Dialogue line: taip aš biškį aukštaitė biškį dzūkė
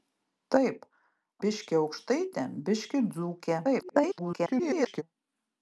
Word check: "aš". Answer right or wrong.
wrong